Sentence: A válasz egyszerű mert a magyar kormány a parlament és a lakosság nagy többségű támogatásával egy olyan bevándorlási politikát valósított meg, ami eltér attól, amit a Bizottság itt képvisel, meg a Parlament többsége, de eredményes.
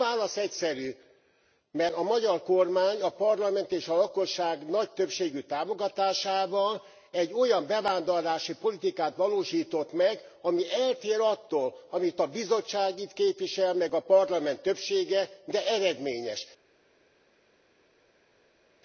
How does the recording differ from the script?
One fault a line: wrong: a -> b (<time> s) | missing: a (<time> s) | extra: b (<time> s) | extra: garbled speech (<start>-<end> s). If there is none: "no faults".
no faults